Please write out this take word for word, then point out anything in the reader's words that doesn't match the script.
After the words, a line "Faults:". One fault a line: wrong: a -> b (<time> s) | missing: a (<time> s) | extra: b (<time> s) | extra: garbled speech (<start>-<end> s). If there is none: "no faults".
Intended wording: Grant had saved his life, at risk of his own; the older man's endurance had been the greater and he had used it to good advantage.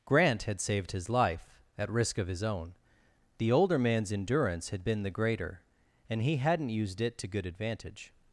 Grant had saved his life, at risk of his own; the older man's endurance had been the greater and he hadn't used it to good advantage.
Faults:
wrong: had -> hadn't (6.4 s)